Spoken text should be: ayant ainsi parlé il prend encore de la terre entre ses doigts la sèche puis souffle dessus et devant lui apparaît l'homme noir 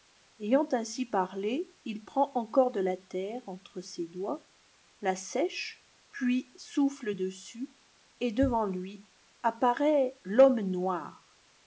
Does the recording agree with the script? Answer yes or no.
yes